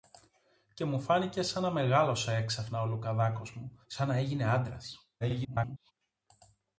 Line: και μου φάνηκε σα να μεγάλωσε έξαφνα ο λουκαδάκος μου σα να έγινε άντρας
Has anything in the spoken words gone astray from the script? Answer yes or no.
yes